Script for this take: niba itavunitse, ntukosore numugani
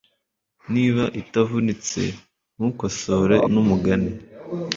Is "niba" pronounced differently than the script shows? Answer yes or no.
no